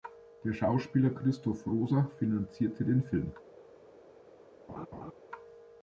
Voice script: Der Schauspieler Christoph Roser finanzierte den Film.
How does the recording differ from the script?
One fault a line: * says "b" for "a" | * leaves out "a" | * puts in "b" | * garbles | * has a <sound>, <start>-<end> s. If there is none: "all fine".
* has a laugh, 4.7-5.1 s